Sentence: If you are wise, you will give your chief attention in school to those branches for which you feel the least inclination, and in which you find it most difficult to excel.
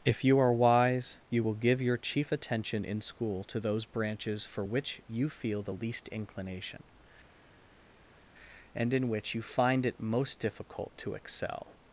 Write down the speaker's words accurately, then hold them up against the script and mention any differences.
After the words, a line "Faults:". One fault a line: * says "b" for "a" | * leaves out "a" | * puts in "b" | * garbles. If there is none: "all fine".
If you are wise, you will give your chief attention in school to those branches for which you feel the least inclination, and in which you find it most difficult to excel.
Faults:
all fine